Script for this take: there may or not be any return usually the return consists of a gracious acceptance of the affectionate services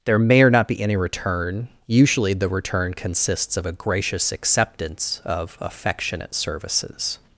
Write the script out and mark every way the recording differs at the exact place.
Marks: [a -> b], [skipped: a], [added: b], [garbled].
there may or not be any return usually the return consists of a gracious acceptance of [skipped: the] affectionate services